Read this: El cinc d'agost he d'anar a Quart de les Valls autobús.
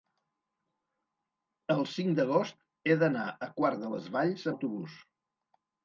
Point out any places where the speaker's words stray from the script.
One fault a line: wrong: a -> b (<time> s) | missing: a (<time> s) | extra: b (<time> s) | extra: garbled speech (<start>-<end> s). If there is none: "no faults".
no faults